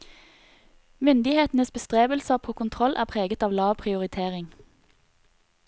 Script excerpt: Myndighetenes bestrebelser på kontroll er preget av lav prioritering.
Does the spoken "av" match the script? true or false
true